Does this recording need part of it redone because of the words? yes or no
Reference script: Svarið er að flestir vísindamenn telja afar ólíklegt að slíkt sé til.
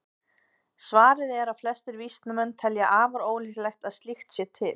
no